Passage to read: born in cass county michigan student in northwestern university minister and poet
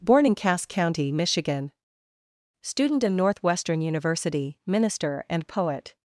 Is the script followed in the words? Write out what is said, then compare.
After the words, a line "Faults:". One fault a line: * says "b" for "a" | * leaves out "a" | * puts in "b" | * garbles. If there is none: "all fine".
born in cass county michigan student in northwestern university minister and poet
Faults:
all fine